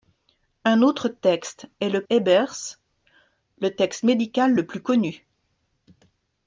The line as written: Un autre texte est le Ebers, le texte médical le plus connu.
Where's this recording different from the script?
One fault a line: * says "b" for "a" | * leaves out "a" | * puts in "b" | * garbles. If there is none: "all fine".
all fine